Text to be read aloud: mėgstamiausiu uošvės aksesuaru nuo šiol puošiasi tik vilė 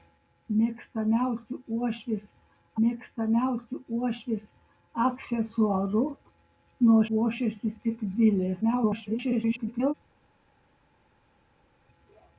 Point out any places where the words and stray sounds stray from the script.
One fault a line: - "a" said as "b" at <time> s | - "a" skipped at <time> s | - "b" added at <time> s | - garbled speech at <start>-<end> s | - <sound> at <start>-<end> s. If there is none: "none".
- "mėgstamiausiu uošvės" added at 2.8 s
- "šiol" skipped at 7.0 s
- garbled speech at 8.6-9.9 s